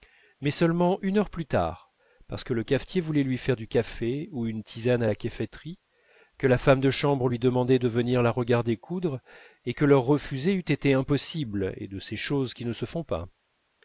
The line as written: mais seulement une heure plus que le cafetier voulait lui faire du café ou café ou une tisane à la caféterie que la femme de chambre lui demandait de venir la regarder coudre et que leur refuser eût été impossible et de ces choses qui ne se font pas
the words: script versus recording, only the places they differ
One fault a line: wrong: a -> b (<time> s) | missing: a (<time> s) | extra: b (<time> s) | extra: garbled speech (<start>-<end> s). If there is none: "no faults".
extra: tard parce (1.4 s)
missing: café ou (4.5 s)